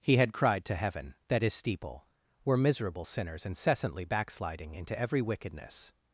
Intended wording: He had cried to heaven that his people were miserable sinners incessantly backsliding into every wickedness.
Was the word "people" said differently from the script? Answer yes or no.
yes